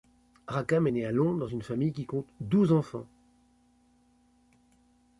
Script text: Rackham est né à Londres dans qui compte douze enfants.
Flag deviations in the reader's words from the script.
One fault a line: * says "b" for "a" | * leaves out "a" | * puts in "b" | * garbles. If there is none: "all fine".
* puts in "une famille"